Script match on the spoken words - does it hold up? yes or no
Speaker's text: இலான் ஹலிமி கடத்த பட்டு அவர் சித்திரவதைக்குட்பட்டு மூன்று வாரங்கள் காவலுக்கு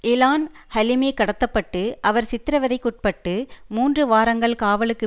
yes